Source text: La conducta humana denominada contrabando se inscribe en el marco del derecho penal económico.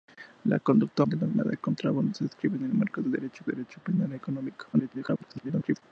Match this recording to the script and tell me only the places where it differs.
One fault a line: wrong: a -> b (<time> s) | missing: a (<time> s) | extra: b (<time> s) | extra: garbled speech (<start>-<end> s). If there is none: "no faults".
missing: humana (1.0 s)
extra: derecho (3.5 s)
extra: garbled speech (4.7-5.8 s)